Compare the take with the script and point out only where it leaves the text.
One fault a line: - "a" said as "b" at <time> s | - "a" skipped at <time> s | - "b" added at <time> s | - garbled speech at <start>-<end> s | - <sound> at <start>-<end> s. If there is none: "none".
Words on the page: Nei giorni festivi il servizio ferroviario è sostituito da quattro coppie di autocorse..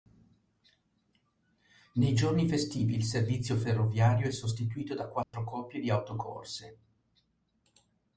- dropout at 5.2-5.3 s